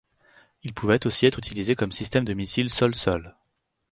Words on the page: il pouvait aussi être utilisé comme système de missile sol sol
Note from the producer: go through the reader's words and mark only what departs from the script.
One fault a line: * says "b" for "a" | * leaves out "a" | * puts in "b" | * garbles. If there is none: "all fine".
all fine